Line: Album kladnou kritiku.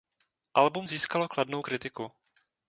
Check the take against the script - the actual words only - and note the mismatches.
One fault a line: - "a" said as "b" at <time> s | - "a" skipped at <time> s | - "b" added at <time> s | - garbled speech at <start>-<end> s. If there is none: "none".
- "získalo" added at 0.8 s